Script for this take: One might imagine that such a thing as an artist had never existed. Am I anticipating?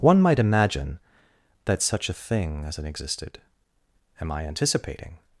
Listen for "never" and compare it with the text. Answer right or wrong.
wrong